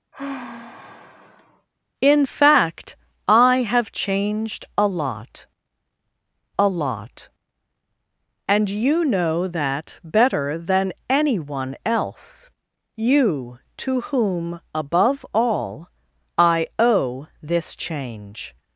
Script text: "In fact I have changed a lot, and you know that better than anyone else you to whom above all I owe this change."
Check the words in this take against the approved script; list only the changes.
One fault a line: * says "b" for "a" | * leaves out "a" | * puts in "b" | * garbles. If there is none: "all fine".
* puts in "a lot"